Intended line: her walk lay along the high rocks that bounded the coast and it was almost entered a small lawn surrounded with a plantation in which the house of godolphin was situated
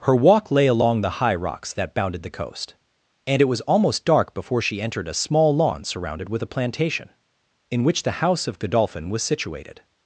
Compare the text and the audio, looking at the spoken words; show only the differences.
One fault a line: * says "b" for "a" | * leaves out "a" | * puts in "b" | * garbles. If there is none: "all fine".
* puts in "dark before she"